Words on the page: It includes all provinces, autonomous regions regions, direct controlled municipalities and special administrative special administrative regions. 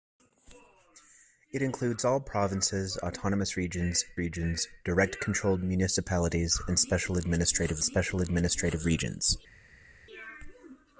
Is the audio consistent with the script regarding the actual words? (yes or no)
yes